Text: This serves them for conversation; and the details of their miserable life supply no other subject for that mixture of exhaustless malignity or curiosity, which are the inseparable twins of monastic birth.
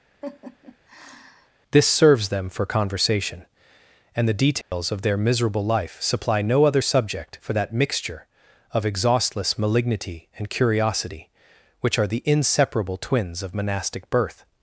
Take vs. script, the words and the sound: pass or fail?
fail